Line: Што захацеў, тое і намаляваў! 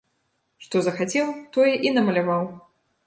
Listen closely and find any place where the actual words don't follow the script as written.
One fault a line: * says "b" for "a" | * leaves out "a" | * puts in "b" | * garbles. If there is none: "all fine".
all fine